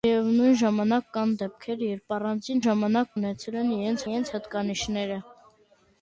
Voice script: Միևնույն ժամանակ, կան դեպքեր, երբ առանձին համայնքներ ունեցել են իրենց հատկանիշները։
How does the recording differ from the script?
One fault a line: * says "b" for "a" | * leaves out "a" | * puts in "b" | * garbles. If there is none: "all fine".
* says "ժամանակ" for "համայնքներ"
* puts in "իրենց"